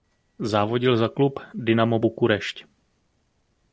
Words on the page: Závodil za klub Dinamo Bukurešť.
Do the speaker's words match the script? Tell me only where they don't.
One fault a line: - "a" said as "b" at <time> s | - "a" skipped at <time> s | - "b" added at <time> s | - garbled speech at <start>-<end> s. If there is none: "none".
none